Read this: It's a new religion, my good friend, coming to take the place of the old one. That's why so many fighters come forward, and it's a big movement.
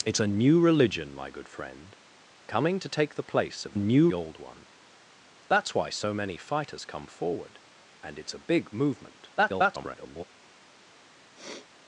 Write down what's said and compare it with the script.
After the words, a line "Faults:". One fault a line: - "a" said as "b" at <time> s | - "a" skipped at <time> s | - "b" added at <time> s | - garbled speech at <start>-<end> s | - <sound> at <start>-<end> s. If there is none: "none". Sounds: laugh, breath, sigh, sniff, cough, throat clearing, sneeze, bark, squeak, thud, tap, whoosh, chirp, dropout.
It's a new religion, my good friend, coming to take the place of new old one. That's why so many fighters come forward, and it's a big movement. [garbled]
Faults:
- "the" said as "new" at 3.7 s
- garbled speech at 9.4-10.2 s
- sniff at 11.3-11.7 s